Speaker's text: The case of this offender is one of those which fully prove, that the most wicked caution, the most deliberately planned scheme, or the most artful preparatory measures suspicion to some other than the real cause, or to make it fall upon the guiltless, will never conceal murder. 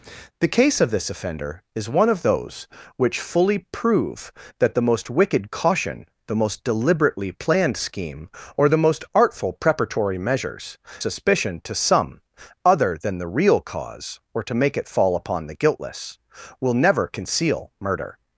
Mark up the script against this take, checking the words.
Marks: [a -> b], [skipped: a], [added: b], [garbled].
The case of this offender is one of those which fully prove, that the most wicked caution, the most deliberately planned scheme, or the most artful preparatory measures suspicion to some other than the real cause, or to make it fall upon the guiltless, will never conceal murder.